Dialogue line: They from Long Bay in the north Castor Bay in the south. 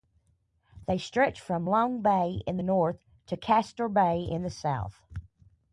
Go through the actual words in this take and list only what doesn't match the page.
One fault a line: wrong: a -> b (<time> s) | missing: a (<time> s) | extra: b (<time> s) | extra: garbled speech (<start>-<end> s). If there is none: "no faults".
extra: stretch (1.0 s)
extra: to (3.3 s)